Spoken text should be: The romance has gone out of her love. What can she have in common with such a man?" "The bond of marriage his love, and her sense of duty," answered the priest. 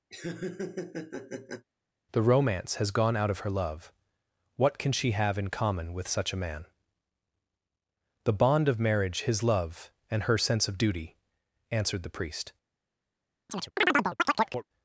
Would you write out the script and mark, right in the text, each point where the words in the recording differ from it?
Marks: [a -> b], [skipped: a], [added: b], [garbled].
The romance has gone out of her love. What can she have in common with such a man?" "The bond of marriage his love, and her sense of duty," answered the priest.